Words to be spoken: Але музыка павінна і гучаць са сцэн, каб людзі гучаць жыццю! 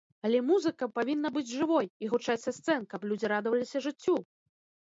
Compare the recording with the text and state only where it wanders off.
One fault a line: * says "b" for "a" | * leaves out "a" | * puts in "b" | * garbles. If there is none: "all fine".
* puts in "быць жывой"
* says "радаваліся" for "гучаць"